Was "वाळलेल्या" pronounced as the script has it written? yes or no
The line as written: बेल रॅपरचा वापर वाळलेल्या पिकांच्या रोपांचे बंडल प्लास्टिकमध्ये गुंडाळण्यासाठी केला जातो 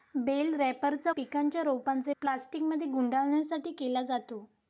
no